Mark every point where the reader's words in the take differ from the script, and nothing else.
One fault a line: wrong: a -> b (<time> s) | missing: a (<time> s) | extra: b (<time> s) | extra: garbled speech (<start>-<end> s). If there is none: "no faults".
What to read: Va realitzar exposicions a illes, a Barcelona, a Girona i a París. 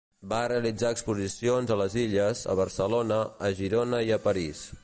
extra: les (1.8 s)